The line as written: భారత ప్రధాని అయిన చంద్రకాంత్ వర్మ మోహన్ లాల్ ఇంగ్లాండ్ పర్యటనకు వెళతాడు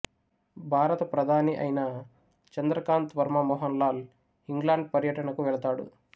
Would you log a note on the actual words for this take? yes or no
no